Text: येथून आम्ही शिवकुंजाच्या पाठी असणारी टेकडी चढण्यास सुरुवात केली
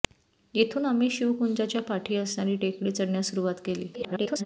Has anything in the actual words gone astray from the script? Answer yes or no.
yes